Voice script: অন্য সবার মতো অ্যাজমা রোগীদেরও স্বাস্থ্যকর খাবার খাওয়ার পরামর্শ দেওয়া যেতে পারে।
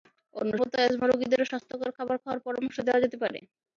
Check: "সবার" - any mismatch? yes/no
yes